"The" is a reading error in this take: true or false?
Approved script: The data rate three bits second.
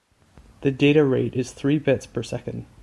false